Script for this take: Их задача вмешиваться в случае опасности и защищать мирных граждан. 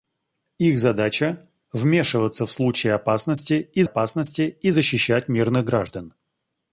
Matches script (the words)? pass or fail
fail